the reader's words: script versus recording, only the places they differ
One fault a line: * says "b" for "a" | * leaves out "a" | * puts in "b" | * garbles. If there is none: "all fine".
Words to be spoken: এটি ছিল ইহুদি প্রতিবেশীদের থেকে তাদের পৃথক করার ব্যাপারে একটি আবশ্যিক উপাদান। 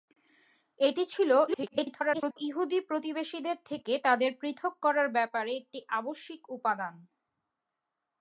* garbles